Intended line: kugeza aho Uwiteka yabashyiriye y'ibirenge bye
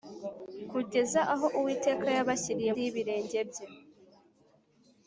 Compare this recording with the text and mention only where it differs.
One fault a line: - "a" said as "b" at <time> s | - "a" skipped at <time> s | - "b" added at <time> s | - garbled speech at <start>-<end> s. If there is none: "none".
none